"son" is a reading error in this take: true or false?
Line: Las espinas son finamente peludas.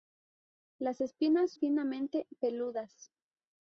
true